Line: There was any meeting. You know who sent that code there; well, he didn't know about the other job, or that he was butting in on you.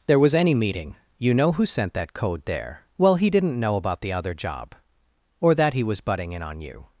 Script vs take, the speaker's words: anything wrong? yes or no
no